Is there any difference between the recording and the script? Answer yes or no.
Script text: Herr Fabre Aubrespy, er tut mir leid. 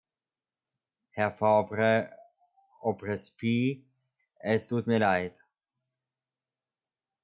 yes